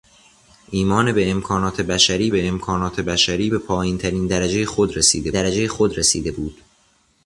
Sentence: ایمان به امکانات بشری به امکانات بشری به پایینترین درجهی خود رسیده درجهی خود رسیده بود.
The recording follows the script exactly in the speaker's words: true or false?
true